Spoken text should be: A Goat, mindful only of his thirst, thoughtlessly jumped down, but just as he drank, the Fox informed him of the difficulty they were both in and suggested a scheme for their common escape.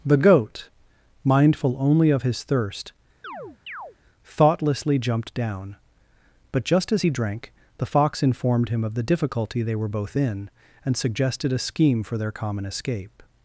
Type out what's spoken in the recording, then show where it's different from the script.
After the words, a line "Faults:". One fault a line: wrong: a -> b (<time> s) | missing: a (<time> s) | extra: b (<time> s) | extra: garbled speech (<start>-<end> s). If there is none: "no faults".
The Goat, mindful only of his thirst, thoughtlessly jumped down, but just as he drank, the Fox informed him of the difficulty they were both in and suggested a scheme for their common escape.
Faults:
wrong: A -> The (0.0 s)